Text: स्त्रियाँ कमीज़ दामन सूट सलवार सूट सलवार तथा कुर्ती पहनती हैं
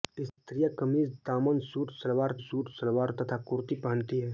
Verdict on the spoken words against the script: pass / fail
pass